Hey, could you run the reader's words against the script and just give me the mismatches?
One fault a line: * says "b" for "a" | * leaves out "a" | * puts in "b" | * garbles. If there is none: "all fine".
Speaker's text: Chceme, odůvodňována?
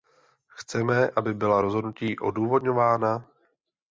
* puts in "aby byla rozhodnutí"